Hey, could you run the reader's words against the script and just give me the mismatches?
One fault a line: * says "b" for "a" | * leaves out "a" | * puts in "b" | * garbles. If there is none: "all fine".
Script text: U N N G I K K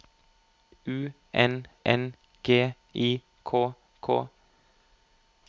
all fine